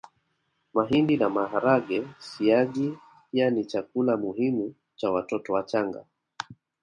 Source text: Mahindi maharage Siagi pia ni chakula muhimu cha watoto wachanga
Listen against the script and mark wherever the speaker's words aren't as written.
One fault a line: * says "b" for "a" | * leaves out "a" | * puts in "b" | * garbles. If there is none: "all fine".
* puts in "na"